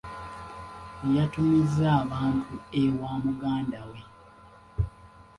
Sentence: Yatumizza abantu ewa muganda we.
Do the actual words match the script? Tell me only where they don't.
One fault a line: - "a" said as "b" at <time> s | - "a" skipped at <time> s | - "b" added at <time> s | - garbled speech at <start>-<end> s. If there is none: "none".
none